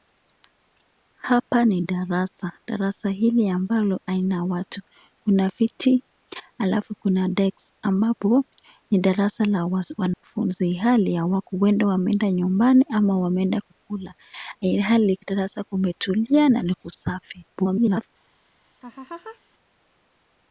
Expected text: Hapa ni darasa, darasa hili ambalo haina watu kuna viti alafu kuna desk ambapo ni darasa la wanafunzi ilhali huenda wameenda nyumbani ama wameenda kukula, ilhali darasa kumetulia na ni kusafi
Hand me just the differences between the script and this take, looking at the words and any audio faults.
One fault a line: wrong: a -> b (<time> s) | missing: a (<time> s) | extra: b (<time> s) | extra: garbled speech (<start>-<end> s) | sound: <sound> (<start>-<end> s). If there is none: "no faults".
sound: dropout (10.1-10.2 s)
extra: garbled speech (17.5-18.1 s)
sound: laugh (18.8-19.4 s)